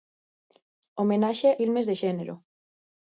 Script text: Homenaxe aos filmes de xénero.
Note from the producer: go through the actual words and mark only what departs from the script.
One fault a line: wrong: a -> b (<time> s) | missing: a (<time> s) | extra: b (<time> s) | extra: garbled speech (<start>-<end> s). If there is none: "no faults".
missing: aos (1.5 s)